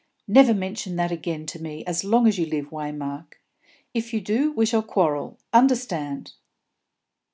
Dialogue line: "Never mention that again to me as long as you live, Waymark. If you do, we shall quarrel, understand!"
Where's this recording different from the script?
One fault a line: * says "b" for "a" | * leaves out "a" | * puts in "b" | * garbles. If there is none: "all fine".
all fine